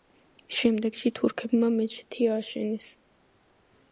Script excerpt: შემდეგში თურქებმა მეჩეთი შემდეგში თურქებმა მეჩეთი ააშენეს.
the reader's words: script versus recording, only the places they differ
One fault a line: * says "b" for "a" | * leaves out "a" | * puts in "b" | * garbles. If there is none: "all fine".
* leaves out "შემდეგში თურქებმა მეჩეთი"